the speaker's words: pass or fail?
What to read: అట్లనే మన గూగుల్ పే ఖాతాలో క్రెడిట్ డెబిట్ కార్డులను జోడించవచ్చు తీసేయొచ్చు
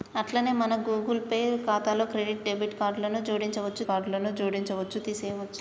fail